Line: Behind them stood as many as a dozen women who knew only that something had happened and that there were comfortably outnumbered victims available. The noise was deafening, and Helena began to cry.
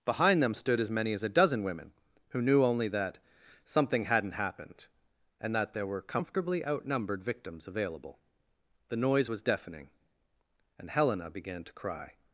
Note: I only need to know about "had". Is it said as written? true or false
false